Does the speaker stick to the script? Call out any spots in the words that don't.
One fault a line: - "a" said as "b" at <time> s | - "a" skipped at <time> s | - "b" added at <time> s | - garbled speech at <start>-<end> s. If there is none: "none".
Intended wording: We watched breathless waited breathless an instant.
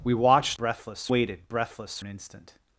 none